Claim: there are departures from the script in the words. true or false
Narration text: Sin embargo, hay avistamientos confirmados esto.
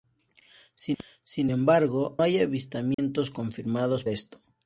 false